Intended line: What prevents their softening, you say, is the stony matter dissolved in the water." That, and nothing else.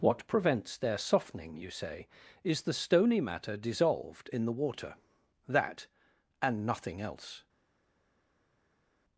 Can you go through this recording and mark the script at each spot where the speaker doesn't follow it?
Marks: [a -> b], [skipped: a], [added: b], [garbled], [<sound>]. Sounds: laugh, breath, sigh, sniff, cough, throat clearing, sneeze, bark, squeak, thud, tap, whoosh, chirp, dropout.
What prevents their softening, you say, is the stony matter dissolved in the water." That, and nothing else.